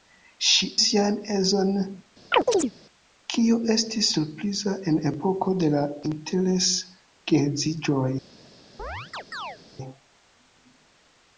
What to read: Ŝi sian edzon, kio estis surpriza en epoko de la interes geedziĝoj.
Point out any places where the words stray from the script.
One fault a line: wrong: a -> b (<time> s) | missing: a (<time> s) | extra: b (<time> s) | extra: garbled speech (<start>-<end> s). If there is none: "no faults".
no faults